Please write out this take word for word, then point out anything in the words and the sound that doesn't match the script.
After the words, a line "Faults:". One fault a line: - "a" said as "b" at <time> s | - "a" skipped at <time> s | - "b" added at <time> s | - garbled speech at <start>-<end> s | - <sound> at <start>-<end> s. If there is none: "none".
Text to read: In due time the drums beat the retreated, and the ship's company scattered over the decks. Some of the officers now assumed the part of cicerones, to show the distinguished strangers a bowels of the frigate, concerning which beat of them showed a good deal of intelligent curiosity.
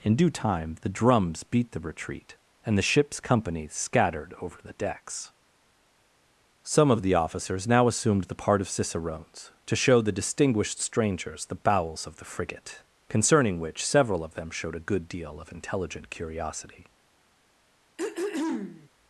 In due time the drums beat the retreat, and the ship's company scattered over the decks. Some of the officers now assumed the part of cicerones, to show the distinguished strangers the bowels of the frigate, concerning which several of them showed a good deal of intelligent curiosity.
Faults:
- "retreated" said as "retreat" at 1.8 s
- "a" said as "the" at 11.4 s
- "beat" said as "several" at 13.8 s
- throat clearing at 18.0-18.9 s